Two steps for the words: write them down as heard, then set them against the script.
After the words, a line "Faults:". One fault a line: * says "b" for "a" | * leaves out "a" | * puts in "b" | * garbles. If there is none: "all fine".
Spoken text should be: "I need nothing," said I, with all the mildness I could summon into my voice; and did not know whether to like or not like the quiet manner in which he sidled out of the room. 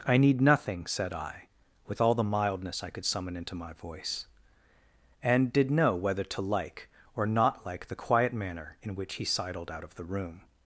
"I need nothing," said I, with all the mildness I could summon into my voice; and did know whether to like or not like the quiet manner in which he sidled out of the room.
Faults:
* leaves out "not"